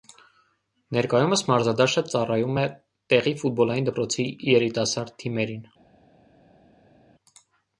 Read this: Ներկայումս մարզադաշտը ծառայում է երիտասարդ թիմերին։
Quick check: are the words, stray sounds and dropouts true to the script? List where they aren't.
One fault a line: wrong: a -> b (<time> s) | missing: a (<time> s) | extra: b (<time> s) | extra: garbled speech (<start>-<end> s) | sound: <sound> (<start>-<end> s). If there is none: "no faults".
extra: տեղի ֆուտբոլային դպրոցի (3.1 s)